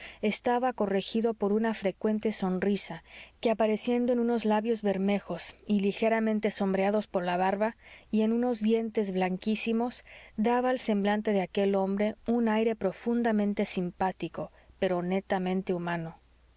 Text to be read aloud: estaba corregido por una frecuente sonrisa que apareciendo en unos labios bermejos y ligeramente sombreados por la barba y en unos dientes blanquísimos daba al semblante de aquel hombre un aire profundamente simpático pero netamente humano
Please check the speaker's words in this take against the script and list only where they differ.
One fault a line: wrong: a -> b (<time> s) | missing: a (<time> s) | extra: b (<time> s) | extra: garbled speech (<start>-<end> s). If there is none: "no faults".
no faults